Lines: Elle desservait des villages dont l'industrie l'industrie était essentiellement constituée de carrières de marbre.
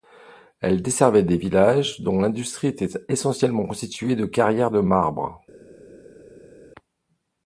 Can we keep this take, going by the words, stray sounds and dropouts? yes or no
no